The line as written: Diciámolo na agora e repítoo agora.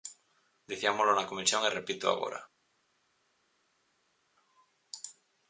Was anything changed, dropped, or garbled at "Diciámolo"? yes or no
no